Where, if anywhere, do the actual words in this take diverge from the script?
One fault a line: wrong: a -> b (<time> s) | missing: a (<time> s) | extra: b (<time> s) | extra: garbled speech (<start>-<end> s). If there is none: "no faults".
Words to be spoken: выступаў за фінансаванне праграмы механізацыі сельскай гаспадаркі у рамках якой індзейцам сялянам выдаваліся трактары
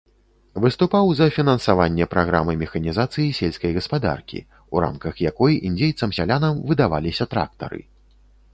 no faults